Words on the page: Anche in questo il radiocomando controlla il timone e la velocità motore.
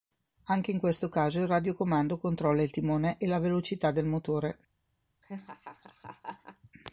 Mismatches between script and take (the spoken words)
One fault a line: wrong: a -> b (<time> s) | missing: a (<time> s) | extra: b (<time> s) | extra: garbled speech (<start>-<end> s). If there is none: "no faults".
extra: caso (1.1 s)
extra: del (3.9 s)